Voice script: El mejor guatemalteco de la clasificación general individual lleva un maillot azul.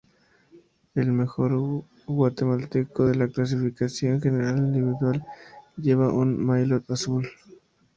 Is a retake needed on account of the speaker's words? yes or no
no